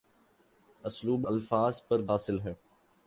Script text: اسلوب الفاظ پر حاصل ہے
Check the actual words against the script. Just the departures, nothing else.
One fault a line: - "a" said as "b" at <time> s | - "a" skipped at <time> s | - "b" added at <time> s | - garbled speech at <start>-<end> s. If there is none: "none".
none